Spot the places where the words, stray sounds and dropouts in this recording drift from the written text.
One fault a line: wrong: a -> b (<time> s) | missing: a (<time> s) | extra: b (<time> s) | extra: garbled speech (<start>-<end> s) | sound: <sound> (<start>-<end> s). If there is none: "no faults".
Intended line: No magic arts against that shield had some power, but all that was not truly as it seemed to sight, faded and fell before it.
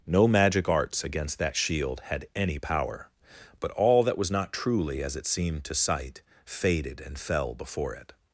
wrong: some -> any (2.4 s)